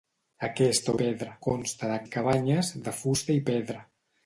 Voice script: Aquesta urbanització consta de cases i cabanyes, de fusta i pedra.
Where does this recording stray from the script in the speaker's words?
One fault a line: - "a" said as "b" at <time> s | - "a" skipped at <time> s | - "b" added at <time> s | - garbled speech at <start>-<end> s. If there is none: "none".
- "urbanització" said as "pedra" at 1.0 s
- "cases" skipped at 2.0 s